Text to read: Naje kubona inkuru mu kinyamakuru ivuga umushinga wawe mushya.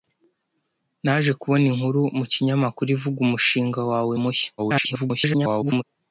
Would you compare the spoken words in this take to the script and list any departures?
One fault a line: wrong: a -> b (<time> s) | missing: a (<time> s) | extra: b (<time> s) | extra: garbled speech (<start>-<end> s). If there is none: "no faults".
extra: garbled speech (4.6-5.8 s)